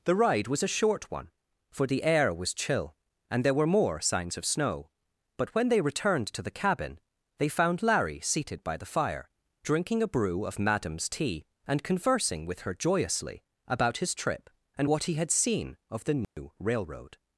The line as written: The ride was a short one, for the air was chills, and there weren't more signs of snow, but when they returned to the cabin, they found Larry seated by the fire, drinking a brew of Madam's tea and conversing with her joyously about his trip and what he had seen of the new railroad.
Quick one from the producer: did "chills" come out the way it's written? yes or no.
no